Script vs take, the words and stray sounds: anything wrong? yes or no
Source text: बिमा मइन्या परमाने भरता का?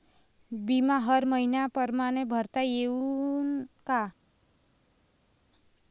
yes